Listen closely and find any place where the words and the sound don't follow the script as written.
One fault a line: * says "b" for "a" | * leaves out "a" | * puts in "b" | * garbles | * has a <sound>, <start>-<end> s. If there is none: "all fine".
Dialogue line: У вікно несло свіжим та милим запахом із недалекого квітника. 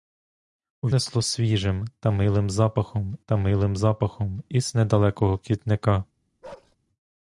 * leaves out "вікно"
* puts in "та милим запахом"
* has a bark, 6.4-6.8 s